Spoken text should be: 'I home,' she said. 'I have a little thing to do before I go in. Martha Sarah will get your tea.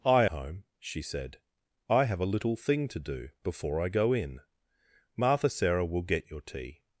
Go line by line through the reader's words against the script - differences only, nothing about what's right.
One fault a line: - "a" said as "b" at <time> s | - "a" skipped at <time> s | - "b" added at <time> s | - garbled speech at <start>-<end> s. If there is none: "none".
none